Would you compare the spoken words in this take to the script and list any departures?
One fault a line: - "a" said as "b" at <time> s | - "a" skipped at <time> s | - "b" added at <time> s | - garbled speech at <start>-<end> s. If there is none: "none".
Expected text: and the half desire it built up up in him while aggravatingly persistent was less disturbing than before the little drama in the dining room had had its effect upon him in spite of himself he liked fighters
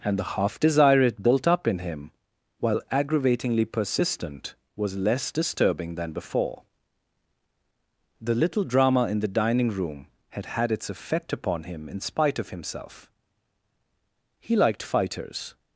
- "up" skipped at 1.7 s